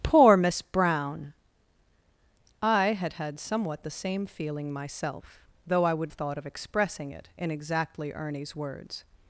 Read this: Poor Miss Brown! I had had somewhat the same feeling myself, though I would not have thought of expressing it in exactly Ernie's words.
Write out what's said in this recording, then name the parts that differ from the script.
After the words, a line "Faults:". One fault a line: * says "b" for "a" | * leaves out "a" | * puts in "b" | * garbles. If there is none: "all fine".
Poor Miss Brown! I had had somewhat the same feeling myself, though I would thought of expressing it in exactly Ernie's words.
Faults:
* leaves out "not have"